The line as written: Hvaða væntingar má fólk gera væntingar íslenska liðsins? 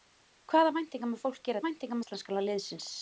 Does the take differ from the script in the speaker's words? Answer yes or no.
no